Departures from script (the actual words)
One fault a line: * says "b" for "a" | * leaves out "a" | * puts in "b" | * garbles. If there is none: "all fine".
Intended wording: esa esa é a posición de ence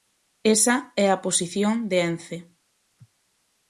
* leaves out "esa"